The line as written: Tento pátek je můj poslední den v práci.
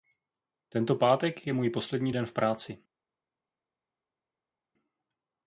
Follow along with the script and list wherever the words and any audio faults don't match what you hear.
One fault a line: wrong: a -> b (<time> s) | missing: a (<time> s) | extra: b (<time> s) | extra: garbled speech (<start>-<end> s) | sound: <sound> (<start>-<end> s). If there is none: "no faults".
no faults